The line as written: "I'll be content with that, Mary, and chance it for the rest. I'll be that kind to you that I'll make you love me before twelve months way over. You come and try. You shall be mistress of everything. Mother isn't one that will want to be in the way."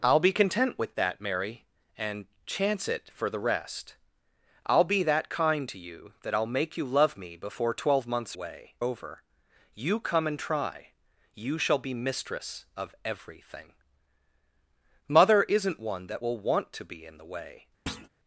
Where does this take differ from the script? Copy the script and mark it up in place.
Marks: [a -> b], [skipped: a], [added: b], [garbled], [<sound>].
"I'll be content with that, Mary, and chance it for the rest. I'll be that kind to you that I'll make you love me before twelve months way over. You come and try. You shall be mistress of everything. Mother isn't one that will want to be in the way." [thud]